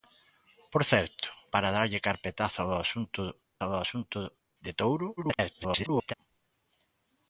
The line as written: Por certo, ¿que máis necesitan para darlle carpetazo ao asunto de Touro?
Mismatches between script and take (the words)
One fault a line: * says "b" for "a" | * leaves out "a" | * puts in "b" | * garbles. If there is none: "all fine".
* leaves out "que máis necesitan"
* puts in "ao asunto"
* garbles